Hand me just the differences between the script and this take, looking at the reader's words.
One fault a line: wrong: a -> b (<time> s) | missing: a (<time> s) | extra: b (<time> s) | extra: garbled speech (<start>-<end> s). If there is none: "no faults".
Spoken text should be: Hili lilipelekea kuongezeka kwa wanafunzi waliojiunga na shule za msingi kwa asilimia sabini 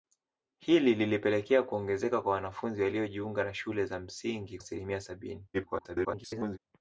missing: kwa (4.6 s)
extra: garbled speech (5.5-6.6 s)